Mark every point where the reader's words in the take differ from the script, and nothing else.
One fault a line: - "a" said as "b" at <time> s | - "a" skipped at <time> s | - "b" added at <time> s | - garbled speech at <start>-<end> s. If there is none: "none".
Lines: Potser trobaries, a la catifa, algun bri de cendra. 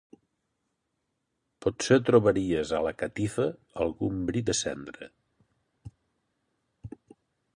none